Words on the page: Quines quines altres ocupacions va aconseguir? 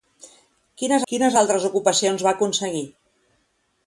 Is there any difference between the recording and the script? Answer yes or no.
no